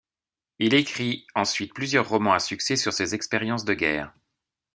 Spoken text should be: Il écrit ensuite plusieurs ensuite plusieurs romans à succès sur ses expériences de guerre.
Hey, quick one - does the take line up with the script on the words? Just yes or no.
no